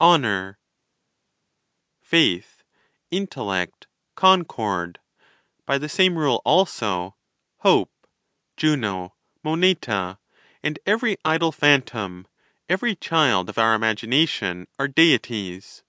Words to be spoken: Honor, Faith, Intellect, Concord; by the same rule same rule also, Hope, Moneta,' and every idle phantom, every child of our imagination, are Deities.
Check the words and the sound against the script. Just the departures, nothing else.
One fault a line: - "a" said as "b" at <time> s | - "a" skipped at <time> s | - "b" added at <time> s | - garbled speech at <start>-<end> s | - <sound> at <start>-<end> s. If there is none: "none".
- "same rule" skipped at 6.4 s
- "Juno" added at 8.6 s